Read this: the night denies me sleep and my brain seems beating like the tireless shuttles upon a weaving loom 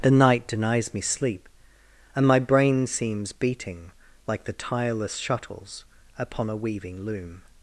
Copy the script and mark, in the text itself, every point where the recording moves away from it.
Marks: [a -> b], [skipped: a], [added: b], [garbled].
the night denies me sleep and my brain seems beating like the tireless shuttles upon a weaving loom